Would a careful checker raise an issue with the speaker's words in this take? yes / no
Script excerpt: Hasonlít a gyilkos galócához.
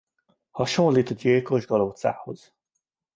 no